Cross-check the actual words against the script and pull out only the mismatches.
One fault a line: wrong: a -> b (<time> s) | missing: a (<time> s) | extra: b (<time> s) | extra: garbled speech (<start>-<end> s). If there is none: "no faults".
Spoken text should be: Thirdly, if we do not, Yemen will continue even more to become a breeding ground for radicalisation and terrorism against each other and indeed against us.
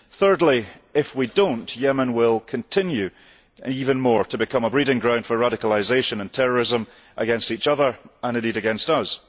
no faults